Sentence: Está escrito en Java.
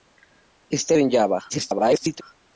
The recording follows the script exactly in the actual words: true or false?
false